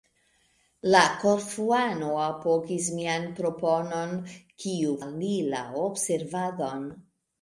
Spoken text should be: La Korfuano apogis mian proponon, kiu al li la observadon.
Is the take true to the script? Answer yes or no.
yes